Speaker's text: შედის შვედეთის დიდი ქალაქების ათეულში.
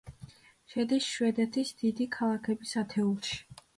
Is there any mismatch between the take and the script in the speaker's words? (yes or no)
no